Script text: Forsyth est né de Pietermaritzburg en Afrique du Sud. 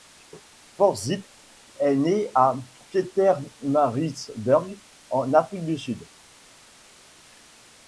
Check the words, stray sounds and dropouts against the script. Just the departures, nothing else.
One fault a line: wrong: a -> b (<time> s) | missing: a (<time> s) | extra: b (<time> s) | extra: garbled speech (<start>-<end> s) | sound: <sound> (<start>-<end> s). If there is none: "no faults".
wrong: de -> à (2.3 s)